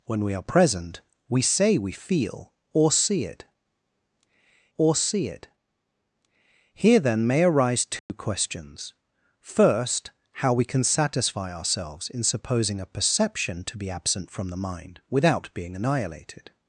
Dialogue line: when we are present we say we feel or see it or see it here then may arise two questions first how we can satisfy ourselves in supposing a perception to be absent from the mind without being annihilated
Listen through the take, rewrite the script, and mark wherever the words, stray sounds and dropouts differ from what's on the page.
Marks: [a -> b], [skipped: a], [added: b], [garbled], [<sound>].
when we are present we say we feel or see it or see it here then may arise two [dropout] questions first how we can satisfy ourselves in supposing a perception to be absent from the mind without being annihilated